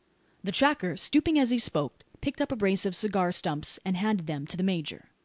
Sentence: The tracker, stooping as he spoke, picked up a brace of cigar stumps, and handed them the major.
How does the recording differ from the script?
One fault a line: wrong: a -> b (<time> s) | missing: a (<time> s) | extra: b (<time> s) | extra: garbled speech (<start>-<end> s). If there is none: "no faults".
extra: to (4.4 s)